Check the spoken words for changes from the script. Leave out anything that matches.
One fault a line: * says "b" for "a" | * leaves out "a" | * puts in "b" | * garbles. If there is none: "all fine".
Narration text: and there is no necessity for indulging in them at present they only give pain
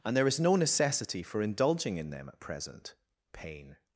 * leaves out "they only give"